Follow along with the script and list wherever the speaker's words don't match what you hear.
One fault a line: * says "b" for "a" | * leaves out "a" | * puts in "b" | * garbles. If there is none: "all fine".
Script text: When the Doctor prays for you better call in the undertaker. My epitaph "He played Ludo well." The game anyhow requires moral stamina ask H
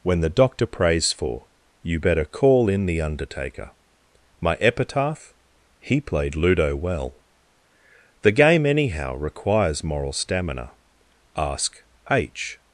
all fine